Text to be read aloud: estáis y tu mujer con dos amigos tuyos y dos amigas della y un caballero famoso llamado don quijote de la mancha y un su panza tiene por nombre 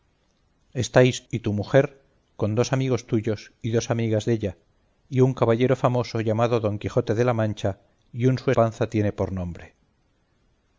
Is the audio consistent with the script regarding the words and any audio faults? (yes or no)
yes